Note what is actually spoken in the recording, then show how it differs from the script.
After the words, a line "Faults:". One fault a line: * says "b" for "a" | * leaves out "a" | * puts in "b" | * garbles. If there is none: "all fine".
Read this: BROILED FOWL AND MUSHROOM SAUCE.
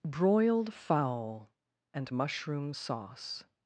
BROILED FOWL AND MUSHROOM SAUCE.
Faults:
all fine